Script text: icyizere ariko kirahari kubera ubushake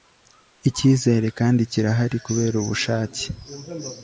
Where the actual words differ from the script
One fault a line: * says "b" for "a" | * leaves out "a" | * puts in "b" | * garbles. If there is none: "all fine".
* says "kandi" for "ariko"